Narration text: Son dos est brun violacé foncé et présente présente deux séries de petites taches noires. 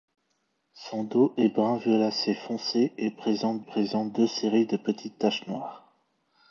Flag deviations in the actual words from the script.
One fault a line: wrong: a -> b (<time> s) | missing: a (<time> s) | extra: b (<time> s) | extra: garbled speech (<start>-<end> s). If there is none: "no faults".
no faults